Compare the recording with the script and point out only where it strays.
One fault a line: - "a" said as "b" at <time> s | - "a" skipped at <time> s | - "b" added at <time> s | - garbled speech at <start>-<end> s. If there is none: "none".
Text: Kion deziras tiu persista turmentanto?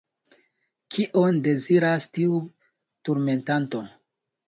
- "persista" skipped at 2.4 s